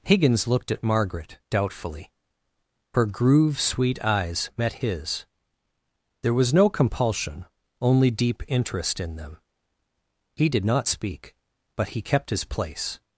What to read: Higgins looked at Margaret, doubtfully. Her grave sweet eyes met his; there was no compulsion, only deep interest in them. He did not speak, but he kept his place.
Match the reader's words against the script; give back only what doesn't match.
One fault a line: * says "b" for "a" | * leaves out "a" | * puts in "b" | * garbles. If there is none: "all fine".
* says "groove" for "grave"